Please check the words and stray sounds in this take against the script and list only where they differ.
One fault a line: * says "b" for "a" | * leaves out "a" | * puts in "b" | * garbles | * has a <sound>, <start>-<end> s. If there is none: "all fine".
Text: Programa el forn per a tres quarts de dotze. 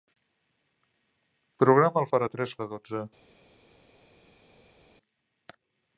* leaves out "forn"
* leaves out "quarts"